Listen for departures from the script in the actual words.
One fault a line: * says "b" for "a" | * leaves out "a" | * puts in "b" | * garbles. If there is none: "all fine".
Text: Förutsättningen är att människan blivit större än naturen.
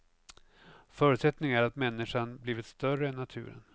all fine